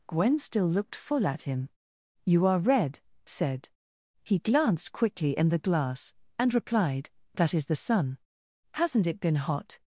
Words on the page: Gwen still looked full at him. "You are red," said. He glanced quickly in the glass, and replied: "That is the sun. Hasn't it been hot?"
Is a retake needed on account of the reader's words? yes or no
no